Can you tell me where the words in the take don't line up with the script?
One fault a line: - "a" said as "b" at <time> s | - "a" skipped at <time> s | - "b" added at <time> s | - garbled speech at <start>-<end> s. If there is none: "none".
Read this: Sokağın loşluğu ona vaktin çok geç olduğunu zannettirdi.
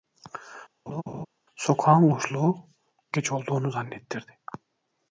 - "ona vaktin çok" skipped at 2.6 s